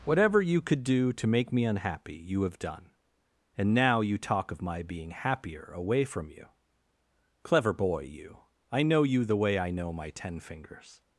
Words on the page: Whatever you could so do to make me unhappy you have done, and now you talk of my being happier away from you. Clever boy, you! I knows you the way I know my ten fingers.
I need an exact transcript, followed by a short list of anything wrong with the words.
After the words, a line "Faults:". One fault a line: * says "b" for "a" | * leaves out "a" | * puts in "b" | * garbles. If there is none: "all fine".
Whatever you could do to make me unhappy you have done, and now you talk of my being happier away from you. Clever boy, you! I know you the way I know my ten fingers.
Faults:
* leaves out "so"
* says "know" for "knows"